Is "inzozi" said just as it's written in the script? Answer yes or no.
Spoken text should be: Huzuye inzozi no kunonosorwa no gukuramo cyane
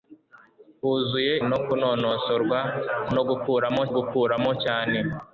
no